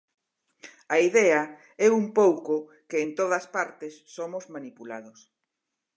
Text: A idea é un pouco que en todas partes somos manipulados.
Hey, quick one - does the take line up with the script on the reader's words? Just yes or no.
yes